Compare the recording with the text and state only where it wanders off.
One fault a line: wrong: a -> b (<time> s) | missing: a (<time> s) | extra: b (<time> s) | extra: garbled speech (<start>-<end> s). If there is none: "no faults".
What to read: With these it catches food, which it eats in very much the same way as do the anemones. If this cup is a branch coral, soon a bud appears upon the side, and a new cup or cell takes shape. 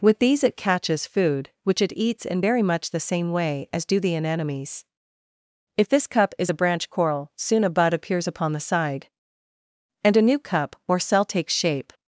no faults